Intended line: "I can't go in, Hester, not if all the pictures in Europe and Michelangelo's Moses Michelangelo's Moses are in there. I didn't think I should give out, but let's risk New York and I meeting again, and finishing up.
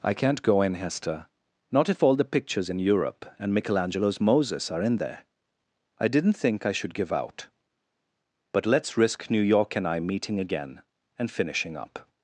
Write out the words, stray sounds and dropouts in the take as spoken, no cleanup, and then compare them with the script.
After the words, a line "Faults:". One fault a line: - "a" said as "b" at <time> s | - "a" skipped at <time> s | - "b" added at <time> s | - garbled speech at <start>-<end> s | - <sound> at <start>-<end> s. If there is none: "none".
"I can't go in, Hester, not if all the pictures in Europe and Michelangelo's Moses are in there. I didn't think I should give out, but let's risk New York and I meeting again, and finishing up.
Faults:
- "Michelangelo's Moses" skipped at 4.7 s